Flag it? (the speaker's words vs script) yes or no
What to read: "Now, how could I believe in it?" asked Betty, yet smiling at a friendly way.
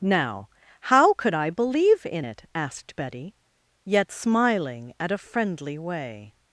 no